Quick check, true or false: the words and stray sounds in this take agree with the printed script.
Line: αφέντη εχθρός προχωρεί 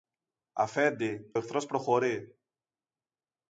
true